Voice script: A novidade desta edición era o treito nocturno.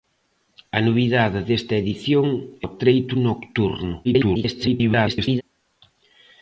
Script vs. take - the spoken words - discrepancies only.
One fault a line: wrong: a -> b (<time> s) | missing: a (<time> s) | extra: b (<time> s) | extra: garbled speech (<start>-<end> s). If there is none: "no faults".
missing: era (2.3 s)
extra: garbled speech (4.0-5.4 s)